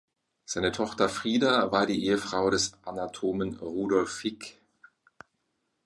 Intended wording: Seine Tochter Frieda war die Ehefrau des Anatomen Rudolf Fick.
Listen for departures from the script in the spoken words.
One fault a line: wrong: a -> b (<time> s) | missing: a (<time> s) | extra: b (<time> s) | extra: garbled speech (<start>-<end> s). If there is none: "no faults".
no faults